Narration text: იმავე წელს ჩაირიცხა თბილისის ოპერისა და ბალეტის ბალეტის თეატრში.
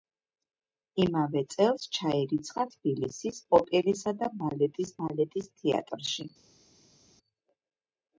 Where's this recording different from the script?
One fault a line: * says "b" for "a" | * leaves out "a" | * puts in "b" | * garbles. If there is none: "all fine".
all fine